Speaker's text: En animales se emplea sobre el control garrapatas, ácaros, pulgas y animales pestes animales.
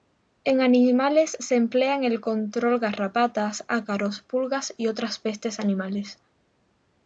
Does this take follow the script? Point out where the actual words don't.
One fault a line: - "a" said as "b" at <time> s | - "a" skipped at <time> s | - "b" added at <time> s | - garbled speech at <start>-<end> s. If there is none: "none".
- "sobre" said as "en" at 1.9 s
- "animales" said as "otras" at 4.9 s